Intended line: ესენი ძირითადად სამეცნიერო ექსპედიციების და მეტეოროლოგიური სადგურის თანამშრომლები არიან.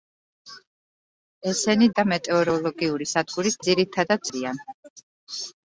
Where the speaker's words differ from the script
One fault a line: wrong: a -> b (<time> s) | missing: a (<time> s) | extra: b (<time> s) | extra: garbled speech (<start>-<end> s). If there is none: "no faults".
missing: ძირითადად სამეცნიერო ექსპედიციების (1.9 s)
wrong: თანამშრომლები -> ძირითადად (3.7 s)